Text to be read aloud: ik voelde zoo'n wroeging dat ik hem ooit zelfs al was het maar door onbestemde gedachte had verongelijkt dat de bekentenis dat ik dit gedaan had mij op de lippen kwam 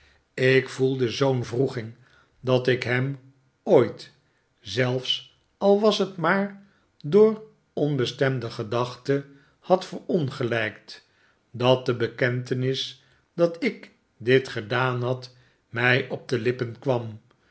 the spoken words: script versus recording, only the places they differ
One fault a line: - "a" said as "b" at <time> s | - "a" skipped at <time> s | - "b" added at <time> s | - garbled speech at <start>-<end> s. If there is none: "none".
none